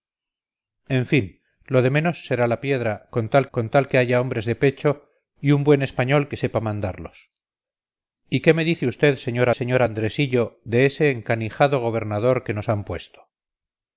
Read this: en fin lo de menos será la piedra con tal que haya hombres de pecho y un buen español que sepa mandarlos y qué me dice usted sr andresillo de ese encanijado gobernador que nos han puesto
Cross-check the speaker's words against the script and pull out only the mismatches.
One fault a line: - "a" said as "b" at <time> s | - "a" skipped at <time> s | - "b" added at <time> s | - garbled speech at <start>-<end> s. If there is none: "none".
- "con tal" added at 3.5 s
- "sr" added at 9.5 s